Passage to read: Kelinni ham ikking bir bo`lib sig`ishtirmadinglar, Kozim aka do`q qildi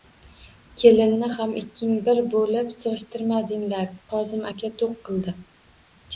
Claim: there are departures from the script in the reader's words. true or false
false